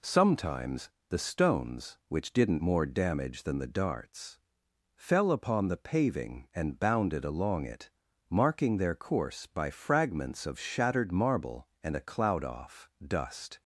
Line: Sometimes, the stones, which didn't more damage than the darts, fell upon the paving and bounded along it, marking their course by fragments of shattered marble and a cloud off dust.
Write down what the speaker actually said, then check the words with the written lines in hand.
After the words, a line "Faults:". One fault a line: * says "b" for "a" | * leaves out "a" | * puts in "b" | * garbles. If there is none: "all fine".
Sometimes, the stones, which didn't more damage than the darts, fell upon the paving and bounded along it, marking their course by fragments of shattered marble and a cloud off dust.
Faults:
all fine